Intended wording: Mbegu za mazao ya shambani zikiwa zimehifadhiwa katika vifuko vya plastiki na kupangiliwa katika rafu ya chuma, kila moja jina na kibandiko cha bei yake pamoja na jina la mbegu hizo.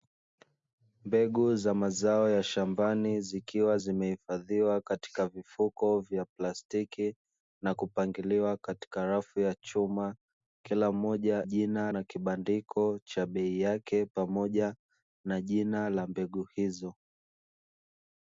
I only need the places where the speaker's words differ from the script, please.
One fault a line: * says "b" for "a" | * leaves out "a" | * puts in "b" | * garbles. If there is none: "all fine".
all fine